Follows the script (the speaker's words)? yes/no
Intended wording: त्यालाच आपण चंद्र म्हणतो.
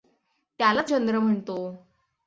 no